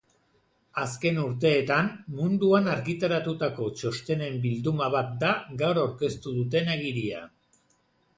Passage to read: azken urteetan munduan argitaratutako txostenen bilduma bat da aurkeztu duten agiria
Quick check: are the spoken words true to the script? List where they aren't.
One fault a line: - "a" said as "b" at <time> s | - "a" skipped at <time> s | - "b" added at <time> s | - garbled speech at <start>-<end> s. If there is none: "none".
- "gaur" added at 5.6 s